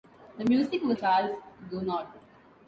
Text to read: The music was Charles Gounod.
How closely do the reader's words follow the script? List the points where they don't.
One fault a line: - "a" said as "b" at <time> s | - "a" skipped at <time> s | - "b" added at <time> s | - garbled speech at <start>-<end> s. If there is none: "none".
none